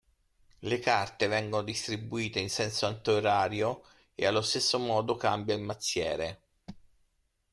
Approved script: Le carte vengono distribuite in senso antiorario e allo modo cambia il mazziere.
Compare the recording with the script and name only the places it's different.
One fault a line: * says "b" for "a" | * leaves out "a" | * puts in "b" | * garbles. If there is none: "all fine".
* puts in "stesso"